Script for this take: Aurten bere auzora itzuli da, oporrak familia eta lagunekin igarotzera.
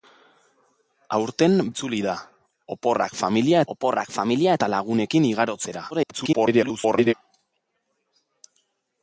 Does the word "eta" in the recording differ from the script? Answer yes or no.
no